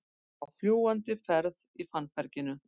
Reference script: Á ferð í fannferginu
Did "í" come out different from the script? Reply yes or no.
no